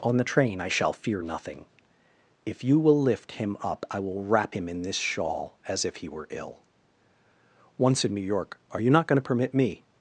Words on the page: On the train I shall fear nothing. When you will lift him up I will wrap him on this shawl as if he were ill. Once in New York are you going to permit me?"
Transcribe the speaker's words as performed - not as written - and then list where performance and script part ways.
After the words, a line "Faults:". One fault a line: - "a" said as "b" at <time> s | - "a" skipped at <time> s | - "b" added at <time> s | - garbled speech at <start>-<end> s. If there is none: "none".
On the train I shall fear nothing. If you will lift him up I will wrap him in this shawl as if he were ill. Once in New York are you not going to permit me?"
Faults:
- "When" said as "If" at 2.5 s
- "on" said as "in" at 4.7 s
- "not" added at 8.9 s